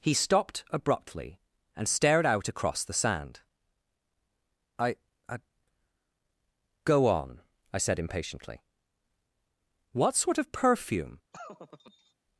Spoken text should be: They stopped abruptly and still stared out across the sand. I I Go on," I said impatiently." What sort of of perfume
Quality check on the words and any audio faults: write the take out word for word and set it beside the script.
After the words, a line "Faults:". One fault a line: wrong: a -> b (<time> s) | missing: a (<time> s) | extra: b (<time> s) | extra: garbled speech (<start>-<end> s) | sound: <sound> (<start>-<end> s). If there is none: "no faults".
He stopped abruptly and stared out across the sand. I I Go on," I said impatiently." What sort of perfume
Faults:
wrong: They -> He (0.0 s)
missing: still (1.9 s)
missing: of (10.5 s)
sound: laugh (11.3-12.1 s)